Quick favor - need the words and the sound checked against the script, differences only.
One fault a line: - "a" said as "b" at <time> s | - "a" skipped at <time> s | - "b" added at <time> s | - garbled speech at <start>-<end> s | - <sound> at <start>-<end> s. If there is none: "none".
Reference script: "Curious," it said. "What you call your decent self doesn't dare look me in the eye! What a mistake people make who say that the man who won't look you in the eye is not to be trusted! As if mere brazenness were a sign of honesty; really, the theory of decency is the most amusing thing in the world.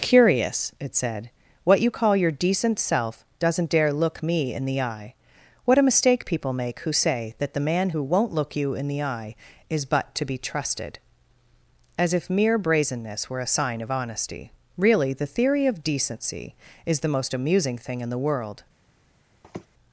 - "not" said as "but" at 9.8 s
- sniff at 19.4-19.7 s